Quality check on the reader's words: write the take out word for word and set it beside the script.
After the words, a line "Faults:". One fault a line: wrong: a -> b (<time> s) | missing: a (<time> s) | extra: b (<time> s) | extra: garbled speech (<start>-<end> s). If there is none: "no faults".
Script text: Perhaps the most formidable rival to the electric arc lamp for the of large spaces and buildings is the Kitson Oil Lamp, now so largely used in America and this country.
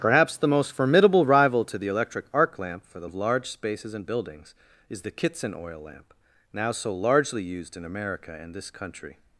Perhaps the most formidable rival to the electric arc lamp for the of large spaces and buildings is the Kitson Oil Lamp, now so largely used in America and this country.
Faults:
no faults